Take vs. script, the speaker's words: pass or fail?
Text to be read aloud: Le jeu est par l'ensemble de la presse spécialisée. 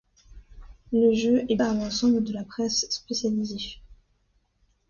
pass